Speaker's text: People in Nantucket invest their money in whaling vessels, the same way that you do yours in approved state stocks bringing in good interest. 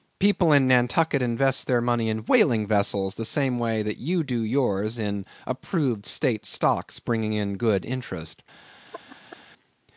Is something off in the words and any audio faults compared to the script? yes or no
yes